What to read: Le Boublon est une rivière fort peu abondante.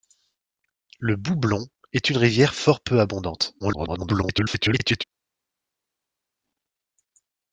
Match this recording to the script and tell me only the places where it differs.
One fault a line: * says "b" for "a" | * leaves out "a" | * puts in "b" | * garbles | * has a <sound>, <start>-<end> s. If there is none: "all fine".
* garbles